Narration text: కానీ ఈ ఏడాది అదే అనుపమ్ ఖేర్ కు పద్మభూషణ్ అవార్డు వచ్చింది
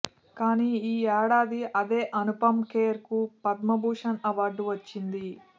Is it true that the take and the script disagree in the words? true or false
false